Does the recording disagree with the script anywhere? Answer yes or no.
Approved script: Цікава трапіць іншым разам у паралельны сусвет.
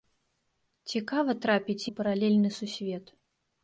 yes